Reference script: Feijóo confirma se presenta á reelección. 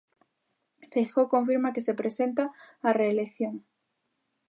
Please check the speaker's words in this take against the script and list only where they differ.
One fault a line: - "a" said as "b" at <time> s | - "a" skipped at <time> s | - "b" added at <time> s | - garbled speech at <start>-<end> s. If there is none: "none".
- "que" added at 1.8 s